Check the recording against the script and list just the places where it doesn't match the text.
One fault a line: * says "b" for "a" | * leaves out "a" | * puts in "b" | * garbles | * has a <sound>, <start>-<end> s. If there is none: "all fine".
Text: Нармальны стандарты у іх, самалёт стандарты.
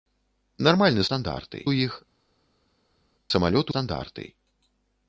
all fine